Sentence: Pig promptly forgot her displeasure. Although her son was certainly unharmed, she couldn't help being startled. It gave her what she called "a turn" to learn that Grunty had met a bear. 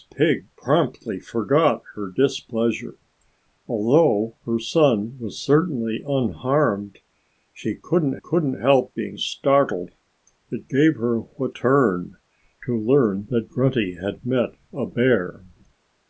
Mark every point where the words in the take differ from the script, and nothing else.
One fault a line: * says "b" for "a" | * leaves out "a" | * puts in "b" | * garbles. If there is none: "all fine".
* puts in "couldn't"
* leaves out "she called a"